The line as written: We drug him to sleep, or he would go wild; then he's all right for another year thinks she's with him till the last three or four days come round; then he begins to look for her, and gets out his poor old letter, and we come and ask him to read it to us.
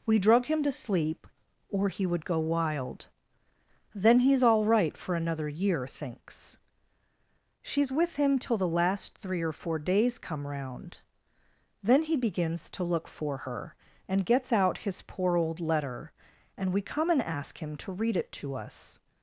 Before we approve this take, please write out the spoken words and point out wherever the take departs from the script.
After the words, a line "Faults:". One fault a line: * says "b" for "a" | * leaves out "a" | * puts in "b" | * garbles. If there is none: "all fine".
We drug him to sleep, or he would go wild; then he's all right for another year thinks she's with him till the last three or four days come round; then he begins to look for her, and gets out his poor old letter, and we come and ask him to read it to us.
Faults:
all fine